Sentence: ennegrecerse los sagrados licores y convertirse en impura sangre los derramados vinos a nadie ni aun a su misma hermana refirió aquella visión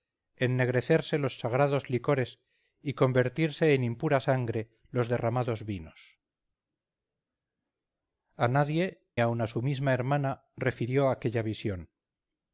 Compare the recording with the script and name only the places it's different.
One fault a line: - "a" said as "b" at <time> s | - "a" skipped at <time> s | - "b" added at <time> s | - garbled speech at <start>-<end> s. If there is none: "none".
- "ni" skipped at 9.1 s